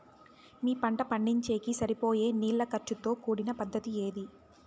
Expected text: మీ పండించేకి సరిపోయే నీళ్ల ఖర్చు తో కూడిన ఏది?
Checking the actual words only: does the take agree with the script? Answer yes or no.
no